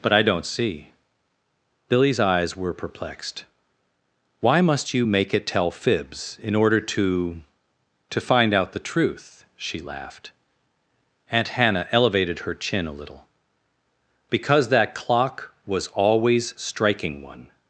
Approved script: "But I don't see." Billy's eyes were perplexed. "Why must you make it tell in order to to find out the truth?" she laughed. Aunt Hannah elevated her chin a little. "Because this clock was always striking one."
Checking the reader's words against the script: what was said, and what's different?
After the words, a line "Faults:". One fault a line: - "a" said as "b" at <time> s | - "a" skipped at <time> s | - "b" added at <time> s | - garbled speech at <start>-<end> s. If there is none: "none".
"But I don't see." Billy's eyes were perplexed. "Why must you make it tell fibs in order to to find out the truth?" she laughed. Aunt Hannah elevated her chin a little. "Because that clock was always striking one."
Faults:
- "fibs" added at 5.7 s
- "this" said as "that" at 14.7 s